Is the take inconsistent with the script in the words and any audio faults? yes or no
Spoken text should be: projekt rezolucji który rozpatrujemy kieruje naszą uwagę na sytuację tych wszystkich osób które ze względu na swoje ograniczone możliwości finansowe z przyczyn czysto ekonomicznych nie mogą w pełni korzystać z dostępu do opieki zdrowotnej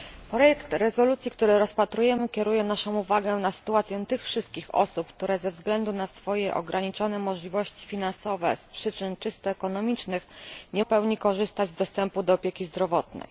yes